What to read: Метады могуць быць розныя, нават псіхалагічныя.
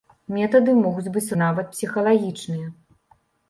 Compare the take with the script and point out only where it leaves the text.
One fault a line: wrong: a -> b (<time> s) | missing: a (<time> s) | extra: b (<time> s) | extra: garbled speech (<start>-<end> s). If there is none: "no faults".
missing: розныя (1.4 s)